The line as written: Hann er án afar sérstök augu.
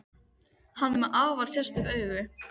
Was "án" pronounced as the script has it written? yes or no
no